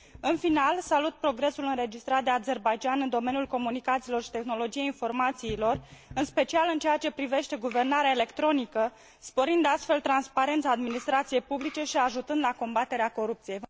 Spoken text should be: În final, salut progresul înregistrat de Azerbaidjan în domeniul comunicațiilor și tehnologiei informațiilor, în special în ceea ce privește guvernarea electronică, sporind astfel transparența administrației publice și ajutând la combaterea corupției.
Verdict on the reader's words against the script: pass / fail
pass